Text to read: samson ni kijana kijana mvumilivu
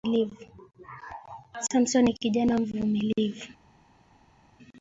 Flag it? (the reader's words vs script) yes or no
yes